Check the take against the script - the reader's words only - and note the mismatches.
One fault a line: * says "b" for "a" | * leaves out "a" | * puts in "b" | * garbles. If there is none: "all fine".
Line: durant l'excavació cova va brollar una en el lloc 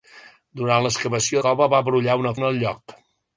all fine